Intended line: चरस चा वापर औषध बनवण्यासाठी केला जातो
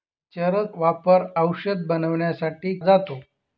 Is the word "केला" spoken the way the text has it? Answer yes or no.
no